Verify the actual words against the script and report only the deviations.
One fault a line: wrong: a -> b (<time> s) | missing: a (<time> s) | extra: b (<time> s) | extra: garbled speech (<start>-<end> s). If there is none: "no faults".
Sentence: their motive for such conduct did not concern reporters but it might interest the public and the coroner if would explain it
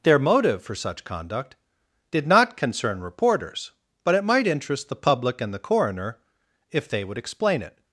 extra: they (6.9 s)